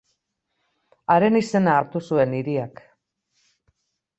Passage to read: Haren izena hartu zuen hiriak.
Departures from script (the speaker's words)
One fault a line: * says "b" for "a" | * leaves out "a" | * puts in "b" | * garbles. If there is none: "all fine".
all fine